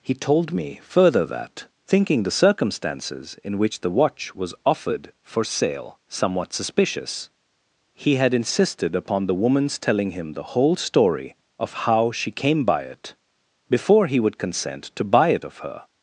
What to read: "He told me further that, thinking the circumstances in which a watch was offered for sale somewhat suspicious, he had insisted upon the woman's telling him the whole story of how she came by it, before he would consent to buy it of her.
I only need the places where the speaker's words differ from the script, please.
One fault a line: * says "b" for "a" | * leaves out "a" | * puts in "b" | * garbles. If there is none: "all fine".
* says "the" for "a"